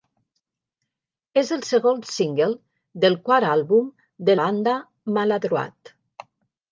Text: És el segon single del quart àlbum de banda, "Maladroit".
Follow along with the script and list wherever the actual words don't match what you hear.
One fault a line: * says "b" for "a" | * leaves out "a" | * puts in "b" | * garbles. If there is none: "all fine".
all fine